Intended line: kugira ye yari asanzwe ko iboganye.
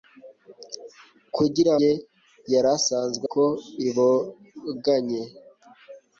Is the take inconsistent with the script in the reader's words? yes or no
no